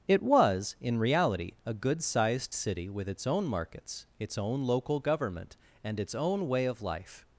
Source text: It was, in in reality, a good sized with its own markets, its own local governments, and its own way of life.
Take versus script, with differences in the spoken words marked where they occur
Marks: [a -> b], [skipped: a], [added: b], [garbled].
It was, in [skipped: in] reality, a good sized [added: city] with its own markets, its own local [governments, -> government] and its own way of life.